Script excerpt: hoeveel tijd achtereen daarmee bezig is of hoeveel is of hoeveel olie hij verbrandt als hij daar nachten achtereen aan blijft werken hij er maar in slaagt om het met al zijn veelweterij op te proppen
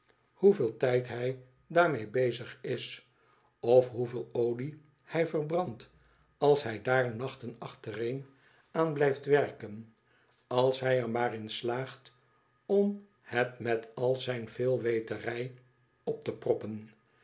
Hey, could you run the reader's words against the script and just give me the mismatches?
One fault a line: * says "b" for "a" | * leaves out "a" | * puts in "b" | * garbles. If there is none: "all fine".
* says "hij" for "achtereen"
* leaves out "is of hoeveel"
* puts in "als"